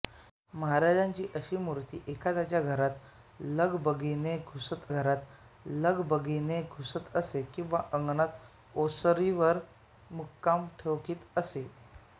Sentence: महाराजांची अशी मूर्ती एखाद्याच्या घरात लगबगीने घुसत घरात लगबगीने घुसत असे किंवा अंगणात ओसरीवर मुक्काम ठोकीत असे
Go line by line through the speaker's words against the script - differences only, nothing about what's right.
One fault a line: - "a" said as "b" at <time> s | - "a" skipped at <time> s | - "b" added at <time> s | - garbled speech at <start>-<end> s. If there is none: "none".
none